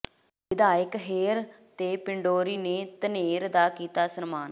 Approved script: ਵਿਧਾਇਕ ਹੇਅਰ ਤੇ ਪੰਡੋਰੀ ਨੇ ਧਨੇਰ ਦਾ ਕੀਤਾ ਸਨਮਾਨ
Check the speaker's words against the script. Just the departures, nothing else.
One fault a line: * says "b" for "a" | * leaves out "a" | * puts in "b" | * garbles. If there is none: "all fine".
all fine